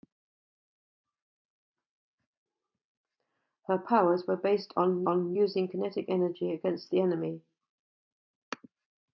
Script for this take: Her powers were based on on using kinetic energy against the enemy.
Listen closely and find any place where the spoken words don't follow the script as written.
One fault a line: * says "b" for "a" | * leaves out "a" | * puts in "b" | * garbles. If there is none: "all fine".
all fine